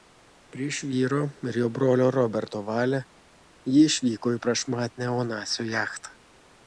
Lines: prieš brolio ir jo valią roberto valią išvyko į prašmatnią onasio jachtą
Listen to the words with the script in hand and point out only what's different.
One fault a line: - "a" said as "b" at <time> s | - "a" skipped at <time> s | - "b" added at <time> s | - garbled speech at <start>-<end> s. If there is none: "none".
- "brolio" said as "vyro" at 0.9 s
- "valią" said as "brolio" at 1.8 s
- "ji" added at 3.8 s